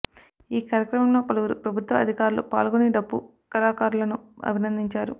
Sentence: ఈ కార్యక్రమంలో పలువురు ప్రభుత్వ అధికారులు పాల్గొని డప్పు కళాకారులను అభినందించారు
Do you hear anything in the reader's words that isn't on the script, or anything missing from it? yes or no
no